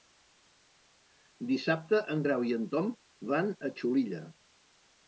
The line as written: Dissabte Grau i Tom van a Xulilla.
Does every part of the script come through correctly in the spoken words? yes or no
no